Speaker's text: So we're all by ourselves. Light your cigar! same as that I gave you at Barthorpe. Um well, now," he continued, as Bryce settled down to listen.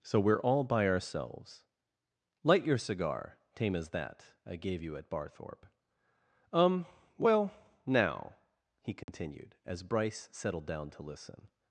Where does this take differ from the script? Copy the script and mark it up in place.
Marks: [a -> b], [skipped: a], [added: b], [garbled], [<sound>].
So we're all by ourselves. Light your cigar! [same -> tame] as that I gave you at Barthorpe. Um well, now," he continued, [dropout] as Bryce settled down to listen.